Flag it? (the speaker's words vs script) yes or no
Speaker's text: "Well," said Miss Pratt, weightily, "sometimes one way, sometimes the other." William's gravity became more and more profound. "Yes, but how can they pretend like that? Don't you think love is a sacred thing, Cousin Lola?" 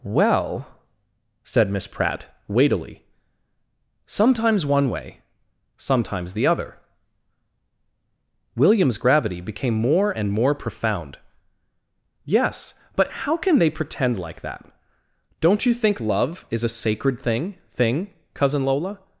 yes